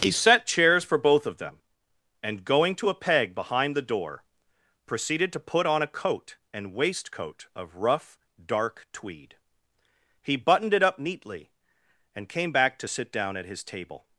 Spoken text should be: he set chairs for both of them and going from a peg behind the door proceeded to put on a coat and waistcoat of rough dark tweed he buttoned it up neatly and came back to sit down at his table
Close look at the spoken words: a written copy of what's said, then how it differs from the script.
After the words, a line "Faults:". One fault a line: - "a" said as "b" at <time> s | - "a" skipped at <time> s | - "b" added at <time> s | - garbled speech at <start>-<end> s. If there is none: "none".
he set chairs for both of them and going to a peg behind the door proceeded to put on a coat and waistcoat of rough dark tweed he buttoned it up neatly and came back to sit down at his table
Faults:
- "from" said as "to" at 2.8 s